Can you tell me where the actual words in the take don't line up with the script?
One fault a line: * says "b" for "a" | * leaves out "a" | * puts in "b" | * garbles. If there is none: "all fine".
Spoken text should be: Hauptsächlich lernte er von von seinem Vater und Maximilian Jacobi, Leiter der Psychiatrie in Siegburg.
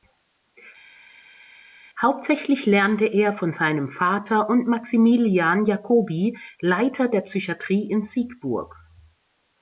* leaves out "von"